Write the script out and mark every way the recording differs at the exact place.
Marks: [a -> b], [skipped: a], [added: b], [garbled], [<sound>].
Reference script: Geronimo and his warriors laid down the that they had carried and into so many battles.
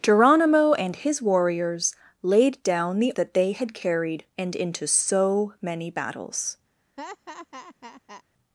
Geronimo and his warriors laid down the that they had carried and into so many battles. [laugh]